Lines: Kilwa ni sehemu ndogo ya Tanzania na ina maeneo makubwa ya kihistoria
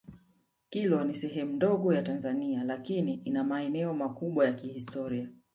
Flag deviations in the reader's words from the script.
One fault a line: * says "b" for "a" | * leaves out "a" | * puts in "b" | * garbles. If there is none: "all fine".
* says "lakini" for "na"